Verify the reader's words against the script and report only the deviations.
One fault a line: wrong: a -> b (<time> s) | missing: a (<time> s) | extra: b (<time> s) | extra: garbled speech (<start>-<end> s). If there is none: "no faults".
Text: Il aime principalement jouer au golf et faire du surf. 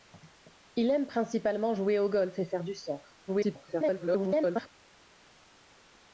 extra: garbled speech (3.3-4.7 s)